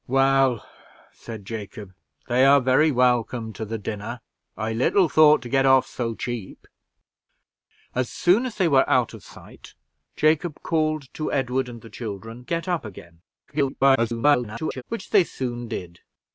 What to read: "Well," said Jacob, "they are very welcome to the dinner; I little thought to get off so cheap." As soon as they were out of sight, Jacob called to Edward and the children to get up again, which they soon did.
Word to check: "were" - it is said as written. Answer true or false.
true